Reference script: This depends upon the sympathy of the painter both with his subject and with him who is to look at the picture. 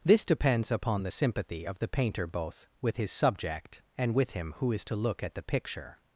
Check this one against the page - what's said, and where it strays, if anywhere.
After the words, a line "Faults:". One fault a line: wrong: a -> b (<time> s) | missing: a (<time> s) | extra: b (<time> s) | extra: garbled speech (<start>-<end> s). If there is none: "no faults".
This depends upon the sympathy of the painter both with his subject and with him who is to look at the picture.
Faults:
no faults